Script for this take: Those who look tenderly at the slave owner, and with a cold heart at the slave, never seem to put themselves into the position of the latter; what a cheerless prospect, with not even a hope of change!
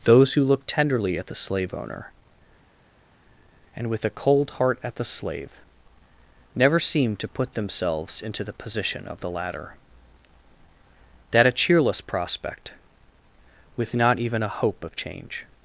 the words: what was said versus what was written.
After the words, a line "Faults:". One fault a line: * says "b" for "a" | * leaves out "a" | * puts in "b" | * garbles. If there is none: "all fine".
Those who look tenderly at the slave owner, and with a cold heart at the slave, never seem to put themselves into the position of the latter; that a cheerless prospect, with not even a hope of change!
Faults:
* says "that" for "what"